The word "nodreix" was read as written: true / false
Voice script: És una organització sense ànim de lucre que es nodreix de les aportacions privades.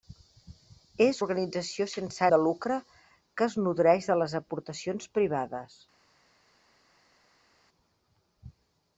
true